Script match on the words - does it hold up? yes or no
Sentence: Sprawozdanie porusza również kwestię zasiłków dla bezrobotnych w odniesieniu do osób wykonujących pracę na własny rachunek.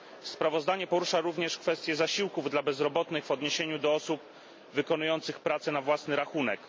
yes